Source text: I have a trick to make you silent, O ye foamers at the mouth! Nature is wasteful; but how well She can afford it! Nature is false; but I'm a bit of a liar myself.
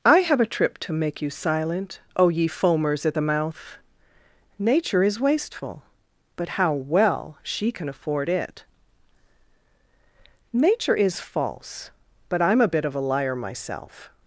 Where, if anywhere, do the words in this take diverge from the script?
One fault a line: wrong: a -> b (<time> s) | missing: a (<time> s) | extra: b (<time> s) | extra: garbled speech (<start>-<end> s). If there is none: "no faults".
wrong: trick -> trip (0.5 s)